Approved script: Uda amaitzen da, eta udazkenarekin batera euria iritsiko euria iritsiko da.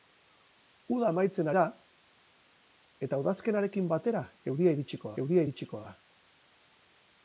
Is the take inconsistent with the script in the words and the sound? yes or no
no